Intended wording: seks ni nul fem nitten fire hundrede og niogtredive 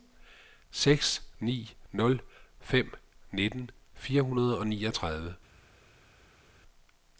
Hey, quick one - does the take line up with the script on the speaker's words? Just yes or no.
yes